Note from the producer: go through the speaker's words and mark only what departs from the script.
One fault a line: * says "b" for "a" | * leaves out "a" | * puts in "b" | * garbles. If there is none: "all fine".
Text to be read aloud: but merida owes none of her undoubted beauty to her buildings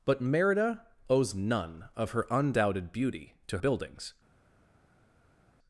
* leaves out "her"